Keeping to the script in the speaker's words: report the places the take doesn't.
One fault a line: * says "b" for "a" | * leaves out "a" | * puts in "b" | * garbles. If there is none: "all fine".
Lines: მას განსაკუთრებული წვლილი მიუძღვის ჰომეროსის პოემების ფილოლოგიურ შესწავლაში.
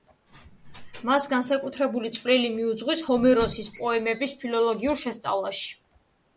all fine